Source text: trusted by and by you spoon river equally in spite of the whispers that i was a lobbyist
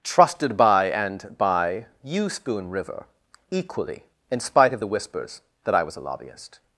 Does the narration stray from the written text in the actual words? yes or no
no